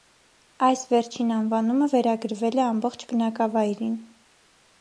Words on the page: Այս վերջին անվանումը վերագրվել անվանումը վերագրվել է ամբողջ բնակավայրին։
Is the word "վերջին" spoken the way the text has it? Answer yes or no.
yes